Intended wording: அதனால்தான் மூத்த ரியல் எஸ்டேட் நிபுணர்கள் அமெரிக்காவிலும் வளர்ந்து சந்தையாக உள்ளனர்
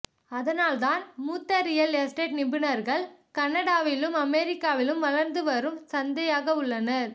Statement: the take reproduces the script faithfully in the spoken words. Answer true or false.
false